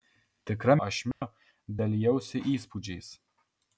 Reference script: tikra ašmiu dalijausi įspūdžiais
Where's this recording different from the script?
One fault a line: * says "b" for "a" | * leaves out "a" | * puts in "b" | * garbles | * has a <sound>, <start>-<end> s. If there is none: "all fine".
* has a dropout, 1.1-1.2 s